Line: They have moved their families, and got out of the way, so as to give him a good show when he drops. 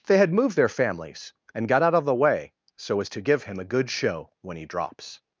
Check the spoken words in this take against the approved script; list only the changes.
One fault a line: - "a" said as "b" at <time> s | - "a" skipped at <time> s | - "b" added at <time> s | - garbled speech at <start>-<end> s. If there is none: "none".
- "have" said as "had" at 0.2 s